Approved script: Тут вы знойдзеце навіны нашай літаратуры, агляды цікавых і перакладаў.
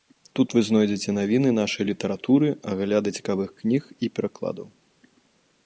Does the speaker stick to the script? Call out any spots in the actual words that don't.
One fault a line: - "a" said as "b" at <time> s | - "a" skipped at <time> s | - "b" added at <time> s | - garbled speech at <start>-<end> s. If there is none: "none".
- "кніг" added at 3.6 s